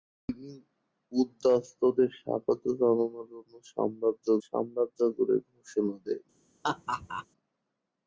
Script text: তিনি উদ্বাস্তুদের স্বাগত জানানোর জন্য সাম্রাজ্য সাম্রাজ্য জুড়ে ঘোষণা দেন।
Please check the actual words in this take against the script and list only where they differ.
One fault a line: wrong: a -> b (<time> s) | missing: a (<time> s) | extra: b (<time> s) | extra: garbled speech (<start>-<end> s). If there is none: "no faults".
no faults